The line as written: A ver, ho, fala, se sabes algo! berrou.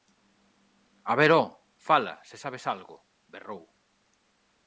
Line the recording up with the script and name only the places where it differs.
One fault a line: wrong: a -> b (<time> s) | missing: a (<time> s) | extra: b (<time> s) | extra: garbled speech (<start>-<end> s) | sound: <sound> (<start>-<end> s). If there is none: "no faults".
no faults